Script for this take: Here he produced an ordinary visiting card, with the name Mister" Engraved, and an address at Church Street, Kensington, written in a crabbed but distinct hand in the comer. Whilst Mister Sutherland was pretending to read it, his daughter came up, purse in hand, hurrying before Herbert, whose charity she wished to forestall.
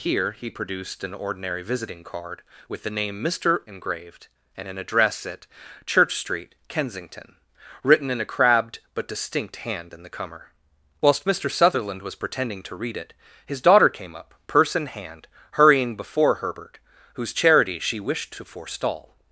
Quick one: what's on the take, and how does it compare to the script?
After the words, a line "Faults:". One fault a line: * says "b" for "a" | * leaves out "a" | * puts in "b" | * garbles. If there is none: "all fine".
Here he produced an ordinary visiting card, with the name Mister" Engraved, and an address at Church Street, Kensington, written in a crabbed but distinct hand in the comer. Whilst Mister Sutherland was pretending to read it, his daughter came up, purse in hand, hurrying before Herbert, whose charity she wished to forestall.
Faults:
all fine